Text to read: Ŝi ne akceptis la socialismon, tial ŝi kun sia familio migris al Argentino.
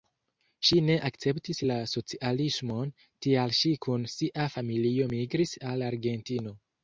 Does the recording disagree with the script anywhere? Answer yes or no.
no